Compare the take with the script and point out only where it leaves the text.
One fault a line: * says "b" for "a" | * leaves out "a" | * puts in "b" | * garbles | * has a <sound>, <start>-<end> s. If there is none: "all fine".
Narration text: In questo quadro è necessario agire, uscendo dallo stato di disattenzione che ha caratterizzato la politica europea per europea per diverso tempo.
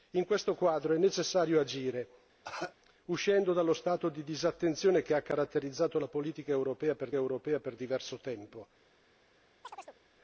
* has a cough, 2.4-2.8 s
* has a chirp, 9.6-10.0 s